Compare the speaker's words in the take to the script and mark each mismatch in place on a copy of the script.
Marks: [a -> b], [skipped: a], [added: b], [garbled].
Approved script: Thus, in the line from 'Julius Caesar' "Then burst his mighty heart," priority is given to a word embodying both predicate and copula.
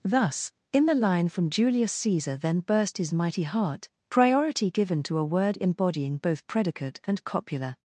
Thus, in the line from 'Julius Caesar' "Then burst his mighty heart," priority [skipped: is] given to a word embodying both predicate and copula.